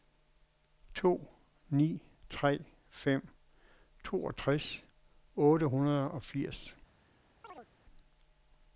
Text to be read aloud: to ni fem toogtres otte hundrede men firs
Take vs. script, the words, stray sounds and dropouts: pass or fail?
fail